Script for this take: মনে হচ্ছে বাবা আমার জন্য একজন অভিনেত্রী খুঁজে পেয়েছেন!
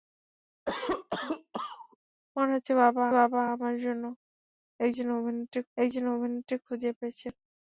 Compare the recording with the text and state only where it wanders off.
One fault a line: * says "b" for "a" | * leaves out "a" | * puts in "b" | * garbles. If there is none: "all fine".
* puts in "বাবা"
* puts in "একজন অভিনেত্রী"